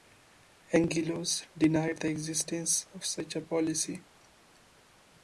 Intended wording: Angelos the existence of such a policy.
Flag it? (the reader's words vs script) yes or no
yes